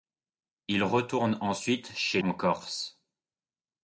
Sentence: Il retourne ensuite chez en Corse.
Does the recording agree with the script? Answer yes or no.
yes